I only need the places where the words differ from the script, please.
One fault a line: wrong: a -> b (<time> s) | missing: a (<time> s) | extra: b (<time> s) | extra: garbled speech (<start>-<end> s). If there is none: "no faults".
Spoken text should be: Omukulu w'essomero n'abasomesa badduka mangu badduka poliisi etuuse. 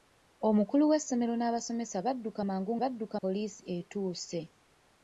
no faults